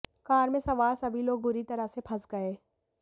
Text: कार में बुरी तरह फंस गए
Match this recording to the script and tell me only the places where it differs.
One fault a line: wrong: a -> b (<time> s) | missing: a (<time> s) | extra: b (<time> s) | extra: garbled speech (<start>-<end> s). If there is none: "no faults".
extra: सवार सभी लोग (0.6 s)
extra: से (1.9 s)